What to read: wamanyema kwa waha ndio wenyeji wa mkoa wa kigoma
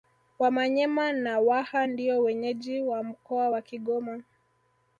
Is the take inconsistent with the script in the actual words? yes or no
yes